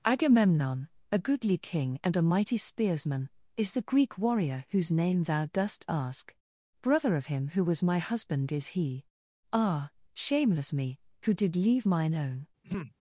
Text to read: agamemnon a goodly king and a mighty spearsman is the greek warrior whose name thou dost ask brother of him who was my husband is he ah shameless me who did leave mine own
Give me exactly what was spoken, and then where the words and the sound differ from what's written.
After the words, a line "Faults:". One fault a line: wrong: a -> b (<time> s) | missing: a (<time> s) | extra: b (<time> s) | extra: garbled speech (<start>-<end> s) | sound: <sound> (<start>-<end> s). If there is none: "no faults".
agamemnon a goodly king and a mighty spearsman is the greek warrior whose name thou dost ask brother of him who was my husband is he ah shameless me who did leave mine own
Faults:
sound: throat clearing (12.6-13.0 s)